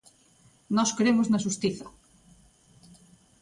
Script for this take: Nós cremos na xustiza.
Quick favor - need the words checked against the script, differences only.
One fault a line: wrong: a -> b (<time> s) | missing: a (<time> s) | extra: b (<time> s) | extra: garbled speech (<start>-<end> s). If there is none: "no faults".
no faults